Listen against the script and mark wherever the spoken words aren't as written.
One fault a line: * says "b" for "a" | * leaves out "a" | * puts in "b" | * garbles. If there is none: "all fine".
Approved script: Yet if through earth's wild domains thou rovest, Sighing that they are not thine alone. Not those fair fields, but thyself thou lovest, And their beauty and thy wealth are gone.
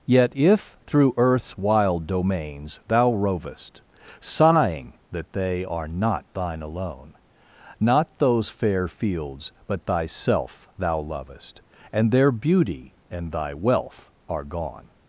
all fine